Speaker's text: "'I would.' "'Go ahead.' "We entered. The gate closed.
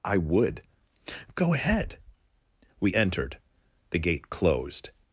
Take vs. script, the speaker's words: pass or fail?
pass